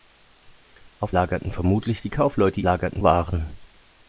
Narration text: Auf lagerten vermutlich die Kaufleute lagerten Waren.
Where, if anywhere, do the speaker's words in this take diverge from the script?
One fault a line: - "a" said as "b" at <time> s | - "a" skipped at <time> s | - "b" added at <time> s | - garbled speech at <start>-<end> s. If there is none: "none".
none